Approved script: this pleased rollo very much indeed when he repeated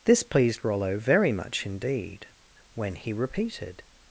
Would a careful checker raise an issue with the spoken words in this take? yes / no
no